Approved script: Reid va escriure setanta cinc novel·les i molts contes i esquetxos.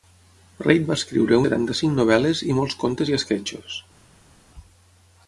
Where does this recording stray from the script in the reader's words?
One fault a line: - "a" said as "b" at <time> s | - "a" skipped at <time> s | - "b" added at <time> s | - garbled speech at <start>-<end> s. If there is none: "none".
none